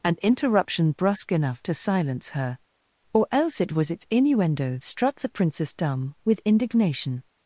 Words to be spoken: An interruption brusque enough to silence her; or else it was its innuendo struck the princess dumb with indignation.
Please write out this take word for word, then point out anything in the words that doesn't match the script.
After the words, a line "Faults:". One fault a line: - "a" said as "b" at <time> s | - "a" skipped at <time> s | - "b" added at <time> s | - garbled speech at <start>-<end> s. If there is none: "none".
An interruption brusque enough to silence her; or else it was its innuendo struck the princess dumb with indignation.
Faults:
none